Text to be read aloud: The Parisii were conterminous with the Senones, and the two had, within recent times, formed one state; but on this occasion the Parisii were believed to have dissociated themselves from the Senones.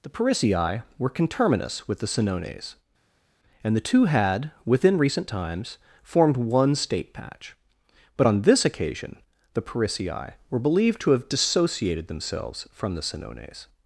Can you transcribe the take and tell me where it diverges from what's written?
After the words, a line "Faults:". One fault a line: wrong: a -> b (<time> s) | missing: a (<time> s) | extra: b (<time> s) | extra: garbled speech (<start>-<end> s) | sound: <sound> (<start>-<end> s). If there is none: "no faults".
The Parisii were conterminous with the Senones, and the two had, within recent times, formed one state; patch but on this occasion the Parisii were believed to have dissociated themselves from the Senones.
Faults:
extra: patch (7.1 s)